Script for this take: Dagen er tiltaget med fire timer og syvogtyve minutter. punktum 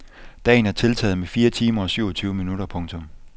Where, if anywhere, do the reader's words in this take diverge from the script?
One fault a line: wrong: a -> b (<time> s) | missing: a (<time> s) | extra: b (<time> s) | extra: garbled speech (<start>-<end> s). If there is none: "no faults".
no faults